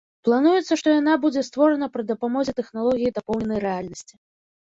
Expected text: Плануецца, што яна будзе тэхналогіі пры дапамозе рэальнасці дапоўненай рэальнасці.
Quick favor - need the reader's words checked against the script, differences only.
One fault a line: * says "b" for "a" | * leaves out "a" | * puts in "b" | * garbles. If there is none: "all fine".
* says "створана" for "тэхналогіі"
* says "тэхналогіі" for "рэальнасці"